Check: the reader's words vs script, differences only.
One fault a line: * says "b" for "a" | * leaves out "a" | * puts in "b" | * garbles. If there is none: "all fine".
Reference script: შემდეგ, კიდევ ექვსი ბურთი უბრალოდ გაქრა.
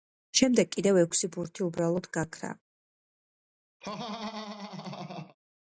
all fine